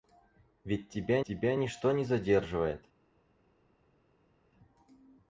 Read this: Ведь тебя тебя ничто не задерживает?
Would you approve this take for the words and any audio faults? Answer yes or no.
yes